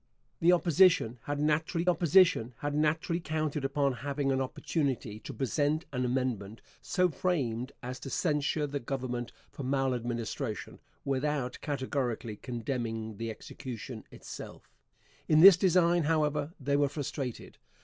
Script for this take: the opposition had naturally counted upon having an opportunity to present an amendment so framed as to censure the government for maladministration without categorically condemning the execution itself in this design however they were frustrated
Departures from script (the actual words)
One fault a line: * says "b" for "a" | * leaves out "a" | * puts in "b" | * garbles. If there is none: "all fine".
* puts in "opposition had naturally"